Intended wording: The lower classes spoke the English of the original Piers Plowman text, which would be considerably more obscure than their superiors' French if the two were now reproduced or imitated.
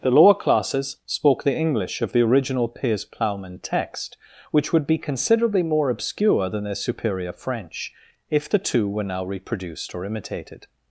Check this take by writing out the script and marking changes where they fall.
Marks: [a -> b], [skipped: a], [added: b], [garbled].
The lower classes spoke the English of the original Piers Plowman text, which would be considerably more obscure than their [superiors' -> superior] French if the two were now reproduced or imitated.